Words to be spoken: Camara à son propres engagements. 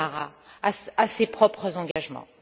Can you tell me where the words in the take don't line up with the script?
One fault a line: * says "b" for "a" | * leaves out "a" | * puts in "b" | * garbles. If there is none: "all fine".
* says "ses" for "son"